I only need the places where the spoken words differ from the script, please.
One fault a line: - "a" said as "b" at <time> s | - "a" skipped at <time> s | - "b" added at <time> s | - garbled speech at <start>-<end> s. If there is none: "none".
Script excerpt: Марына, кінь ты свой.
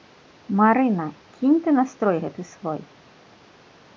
- "настрой гэты" added at 1.8 s